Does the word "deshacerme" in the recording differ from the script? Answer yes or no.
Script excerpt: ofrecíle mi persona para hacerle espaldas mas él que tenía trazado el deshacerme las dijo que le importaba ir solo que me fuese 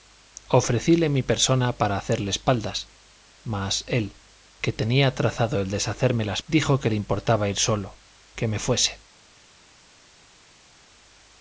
no